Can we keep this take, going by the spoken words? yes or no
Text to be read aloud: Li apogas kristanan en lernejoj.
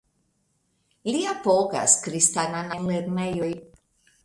yes